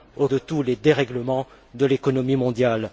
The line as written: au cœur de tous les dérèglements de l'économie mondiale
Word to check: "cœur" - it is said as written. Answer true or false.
false